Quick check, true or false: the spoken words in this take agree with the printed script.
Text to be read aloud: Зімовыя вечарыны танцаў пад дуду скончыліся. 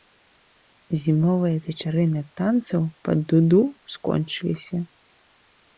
true